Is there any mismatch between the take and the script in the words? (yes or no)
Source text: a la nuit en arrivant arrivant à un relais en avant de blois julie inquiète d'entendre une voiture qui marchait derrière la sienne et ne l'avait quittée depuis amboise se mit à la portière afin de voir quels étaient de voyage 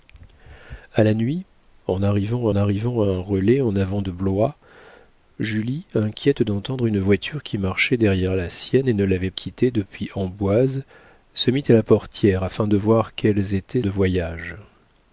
no